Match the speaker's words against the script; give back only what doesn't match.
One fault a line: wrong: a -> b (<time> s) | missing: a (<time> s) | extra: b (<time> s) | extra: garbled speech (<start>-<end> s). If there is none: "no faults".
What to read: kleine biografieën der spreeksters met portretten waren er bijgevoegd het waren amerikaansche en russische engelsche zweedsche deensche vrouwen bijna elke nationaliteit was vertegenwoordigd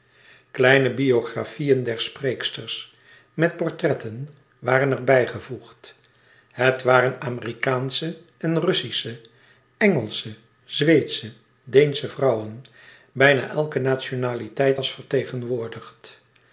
no faults